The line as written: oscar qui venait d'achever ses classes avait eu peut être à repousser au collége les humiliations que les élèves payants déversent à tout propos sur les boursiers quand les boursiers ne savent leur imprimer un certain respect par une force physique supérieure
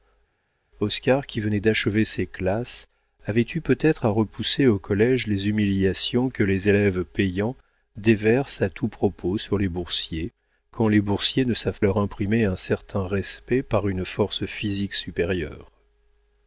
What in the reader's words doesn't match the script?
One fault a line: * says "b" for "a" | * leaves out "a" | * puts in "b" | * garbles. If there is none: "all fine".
all fine